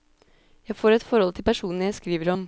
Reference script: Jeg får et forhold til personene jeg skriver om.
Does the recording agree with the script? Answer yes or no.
yes